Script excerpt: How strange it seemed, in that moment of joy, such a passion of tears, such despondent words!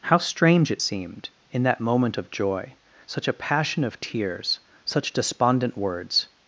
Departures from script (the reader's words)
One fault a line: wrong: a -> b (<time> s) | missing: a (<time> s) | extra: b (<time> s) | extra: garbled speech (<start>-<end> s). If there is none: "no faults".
no faults